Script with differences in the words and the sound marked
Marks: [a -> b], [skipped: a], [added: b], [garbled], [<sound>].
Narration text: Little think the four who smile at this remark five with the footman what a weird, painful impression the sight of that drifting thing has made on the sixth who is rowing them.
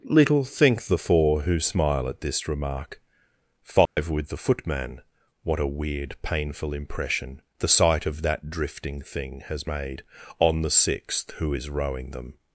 Little think the four who smile at this remark five [dropout] with the footman what a weird, painful impression the sight of that drifting thing has made on the sixth who is rowing them.